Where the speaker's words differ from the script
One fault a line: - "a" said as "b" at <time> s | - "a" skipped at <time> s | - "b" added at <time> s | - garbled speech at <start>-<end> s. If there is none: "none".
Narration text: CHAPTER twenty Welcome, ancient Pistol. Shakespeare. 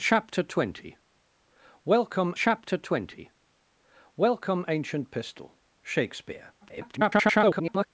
- "chapter twenty Welcome" added at 2.4 s
- garbled speech at 6.6-7.9 s